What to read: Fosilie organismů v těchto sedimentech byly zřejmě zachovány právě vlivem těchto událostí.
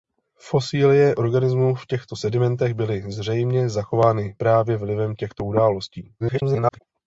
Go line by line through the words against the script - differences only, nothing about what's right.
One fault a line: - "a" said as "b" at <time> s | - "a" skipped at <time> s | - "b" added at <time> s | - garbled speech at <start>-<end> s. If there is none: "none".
- garbled speech at 6.2-6.8 s